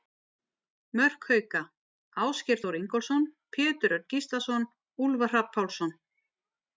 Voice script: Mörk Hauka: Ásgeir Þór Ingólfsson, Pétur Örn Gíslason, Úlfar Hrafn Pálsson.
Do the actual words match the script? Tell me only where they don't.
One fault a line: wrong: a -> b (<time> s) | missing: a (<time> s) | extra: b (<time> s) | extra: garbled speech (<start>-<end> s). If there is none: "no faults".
no faults